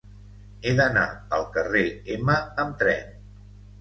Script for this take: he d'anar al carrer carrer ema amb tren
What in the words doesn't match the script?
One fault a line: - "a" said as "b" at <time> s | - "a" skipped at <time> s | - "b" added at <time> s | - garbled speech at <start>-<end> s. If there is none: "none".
- "carrer" skipped at 1.8 s